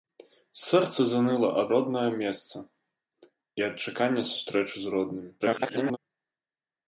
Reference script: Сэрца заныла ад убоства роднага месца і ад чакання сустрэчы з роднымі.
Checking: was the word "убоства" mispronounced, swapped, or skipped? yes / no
yes